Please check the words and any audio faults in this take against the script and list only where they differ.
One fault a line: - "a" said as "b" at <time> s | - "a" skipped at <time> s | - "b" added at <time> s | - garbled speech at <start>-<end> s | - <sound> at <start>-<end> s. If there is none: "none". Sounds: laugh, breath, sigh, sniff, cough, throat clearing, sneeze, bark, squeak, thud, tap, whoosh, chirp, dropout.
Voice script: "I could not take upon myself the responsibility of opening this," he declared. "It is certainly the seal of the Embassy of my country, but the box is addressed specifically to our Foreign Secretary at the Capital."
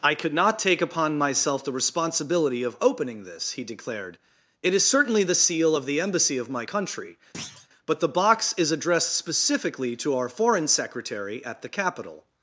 - thud at 7.3-7.7 s